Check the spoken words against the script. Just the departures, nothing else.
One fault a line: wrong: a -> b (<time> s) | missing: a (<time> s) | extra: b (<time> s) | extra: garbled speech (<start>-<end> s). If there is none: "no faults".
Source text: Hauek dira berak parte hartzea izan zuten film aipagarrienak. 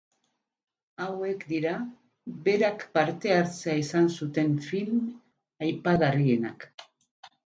no faults